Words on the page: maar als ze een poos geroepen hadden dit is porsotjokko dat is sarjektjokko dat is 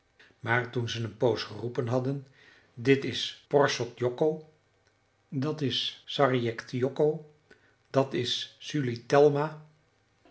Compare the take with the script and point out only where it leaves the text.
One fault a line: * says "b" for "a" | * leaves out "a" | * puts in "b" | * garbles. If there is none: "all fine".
* says "toen" for "als"